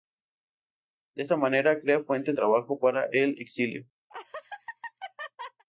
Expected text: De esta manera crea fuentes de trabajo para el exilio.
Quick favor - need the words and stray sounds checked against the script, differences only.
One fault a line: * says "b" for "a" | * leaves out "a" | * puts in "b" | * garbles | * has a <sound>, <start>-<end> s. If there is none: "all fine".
* leaves out "de"
* has a laugh, 4.1-5.6 s